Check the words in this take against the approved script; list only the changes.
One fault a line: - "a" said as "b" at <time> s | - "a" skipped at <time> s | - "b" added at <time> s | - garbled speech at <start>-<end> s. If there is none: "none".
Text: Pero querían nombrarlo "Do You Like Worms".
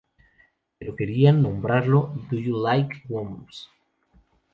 none